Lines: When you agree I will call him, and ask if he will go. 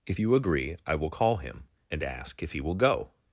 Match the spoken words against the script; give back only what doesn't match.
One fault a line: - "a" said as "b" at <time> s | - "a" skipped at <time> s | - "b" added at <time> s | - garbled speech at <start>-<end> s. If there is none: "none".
- "When" said as "If" at 0.1 s